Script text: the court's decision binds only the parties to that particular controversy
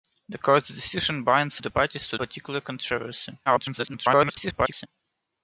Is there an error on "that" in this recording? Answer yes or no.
yes